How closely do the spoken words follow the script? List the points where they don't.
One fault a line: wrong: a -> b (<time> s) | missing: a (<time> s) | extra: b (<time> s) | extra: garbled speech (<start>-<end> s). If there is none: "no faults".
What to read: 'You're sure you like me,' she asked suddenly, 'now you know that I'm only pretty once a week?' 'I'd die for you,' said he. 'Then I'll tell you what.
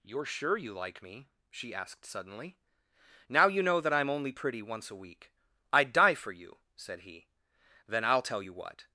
no faults